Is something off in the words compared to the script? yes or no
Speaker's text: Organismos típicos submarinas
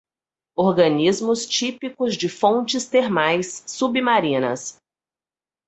yes